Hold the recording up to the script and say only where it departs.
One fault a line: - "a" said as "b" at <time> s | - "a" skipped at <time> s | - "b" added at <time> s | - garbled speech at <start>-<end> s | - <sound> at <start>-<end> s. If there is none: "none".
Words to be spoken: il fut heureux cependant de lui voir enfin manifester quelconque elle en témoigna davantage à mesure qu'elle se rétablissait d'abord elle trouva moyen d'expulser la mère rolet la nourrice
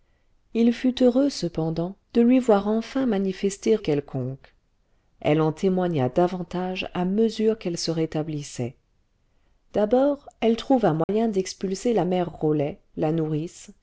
- dropout at 11.0-11.1 s